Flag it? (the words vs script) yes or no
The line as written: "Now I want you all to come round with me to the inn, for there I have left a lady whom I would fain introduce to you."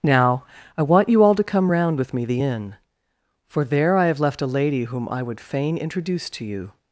yes